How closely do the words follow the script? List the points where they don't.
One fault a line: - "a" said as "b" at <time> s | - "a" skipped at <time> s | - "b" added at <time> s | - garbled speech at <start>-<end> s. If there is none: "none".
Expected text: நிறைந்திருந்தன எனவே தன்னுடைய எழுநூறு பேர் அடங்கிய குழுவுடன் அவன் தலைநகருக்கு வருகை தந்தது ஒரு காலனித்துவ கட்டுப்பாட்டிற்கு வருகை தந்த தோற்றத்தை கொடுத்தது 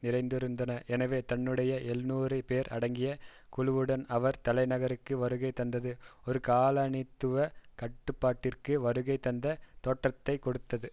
- "அவன்" said as "அவர்" at 4.1 s